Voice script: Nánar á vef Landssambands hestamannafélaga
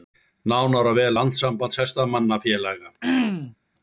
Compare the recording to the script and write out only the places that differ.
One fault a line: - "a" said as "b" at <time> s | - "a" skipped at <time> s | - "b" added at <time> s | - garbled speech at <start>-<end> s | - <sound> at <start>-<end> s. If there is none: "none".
- throat clearing at 3.0-3.6 s